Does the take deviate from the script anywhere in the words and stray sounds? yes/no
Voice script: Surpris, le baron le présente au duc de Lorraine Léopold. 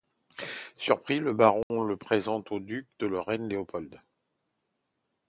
yes